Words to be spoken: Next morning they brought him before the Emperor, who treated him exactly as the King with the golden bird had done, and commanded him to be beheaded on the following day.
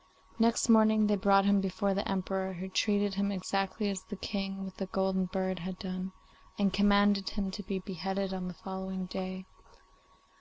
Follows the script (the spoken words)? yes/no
yes